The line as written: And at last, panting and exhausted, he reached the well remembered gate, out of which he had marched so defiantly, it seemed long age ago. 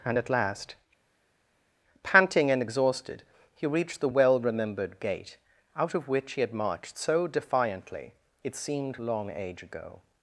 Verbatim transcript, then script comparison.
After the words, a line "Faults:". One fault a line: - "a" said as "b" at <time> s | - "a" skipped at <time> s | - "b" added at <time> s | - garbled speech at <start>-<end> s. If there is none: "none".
And at last, panting and exhausted, he reached the well remembered gate, out of which he had marched so defiantly, it seemed long age ago.
Faults:
none